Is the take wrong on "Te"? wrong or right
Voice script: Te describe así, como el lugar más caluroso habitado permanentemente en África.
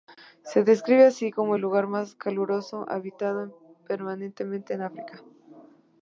wrong